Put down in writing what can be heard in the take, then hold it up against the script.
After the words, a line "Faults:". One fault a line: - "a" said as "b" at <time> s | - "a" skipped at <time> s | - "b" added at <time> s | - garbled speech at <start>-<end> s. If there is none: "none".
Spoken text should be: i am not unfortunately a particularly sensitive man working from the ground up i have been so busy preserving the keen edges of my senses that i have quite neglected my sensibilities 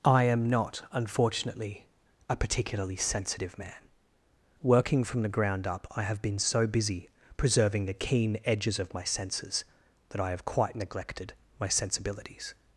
i am not unfortunately a particularly sensitive man working from the ground up i have been so busy preserving the keen edges of my senses that i have quite neglected my sensibilities
Faults:
none